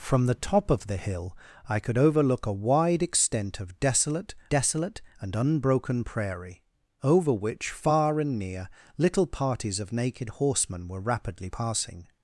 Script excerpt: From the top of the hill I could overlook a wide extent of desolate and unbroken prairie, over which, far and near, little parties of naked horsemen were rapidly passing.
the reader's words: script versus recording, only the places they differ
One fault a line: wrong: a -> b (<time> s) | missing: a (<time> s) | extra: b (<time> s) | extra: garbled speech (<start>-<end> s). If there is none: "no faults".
extra: desolate (4.5 s)